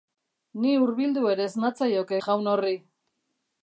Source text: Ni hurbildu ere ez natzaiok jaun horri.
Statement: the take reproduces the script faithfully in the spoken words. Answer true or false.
true